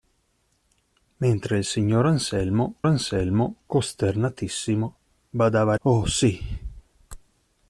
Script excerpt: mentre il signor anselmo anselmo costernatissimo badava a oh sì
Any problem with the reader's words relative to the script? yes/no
no